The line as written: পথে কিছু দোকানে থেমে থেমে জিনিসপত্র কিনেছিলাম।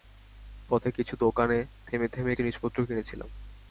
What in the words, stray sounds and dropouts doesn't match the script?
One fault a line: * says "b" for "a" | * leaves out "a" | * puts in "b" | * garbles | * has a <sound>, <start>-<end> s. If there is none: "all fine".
all fine